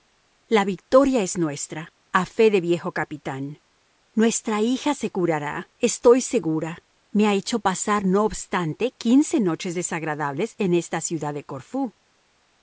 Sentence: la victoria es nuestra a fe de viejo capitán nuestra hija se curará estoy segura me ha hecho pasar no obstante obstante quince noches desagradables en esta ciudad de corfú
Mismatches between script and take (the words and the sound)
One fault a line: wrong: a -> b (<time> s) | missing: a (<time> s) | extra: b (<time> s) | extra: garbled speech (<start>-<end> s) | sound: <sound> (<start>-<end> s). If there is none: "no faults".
missing: obstante (8.9 s)